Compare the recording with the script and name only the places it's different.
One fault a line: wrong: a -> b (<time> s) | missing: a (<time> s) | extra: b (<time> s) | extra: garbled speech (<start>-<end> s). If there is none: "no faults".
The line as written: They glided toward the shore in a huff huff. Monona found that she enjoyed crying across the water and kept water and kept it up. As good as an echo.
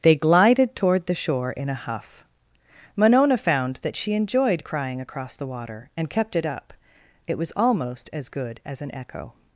missing: huff (2.2 s)
wrong: water and kept it up -> it up It was almost (6.3 s)